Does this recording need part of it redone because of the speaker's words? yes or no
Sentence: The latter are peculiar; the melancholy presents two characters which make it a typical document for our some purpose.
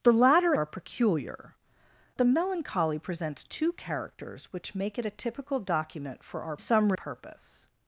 no